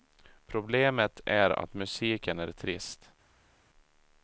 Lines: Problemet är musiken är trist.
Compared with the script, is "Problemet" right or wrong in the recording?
right